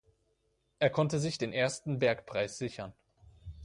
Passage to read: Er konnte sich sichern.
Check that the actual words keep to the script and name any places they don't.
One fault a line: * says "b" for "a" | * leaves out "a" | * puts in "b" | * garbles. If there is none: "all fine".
* puts in "den ersten Bergpreis"